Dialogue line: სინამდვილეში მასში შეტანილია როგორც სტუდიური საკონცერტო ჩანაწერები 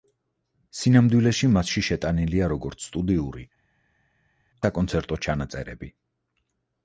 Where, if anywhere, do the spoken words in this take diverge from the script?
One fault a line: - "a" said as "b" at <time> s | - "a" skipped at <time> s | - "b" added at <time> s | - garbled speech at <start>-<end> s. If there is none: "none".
none